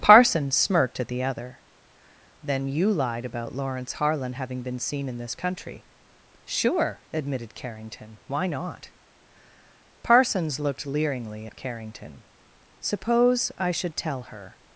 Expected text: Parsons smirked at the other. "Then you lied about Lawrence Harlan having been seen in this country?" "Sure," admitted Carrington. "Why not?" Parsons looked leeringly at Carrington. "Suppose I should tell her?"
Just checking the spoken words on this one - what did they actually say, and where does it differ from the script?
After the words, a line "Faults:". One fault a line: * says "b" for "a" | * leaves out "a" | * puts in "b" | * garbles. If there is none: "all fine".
Parsons smirked at the other. "Then you lied about Lawrence Harlan having been seen in this country?" "Sure," admitted Carrington. "Why not?" Parsons looked leeringly at Carrington. "Suppose I should tell her?"
Faults:
all fine